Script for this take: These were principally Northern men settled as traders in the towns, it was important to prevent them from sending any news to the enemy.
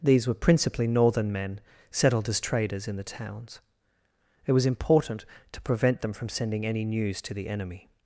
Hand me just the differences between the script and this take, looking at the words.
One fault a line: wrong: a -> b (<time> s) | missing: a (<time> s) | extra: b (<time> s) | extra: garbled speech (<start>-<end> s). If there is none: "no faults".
no faults